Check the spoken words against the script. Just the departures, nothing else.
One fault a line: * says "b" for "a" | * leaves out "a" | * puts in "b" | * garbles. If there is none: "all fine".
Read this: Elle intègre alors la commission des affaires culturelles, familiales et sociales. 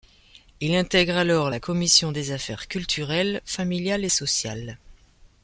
* says "Il" for "Elle"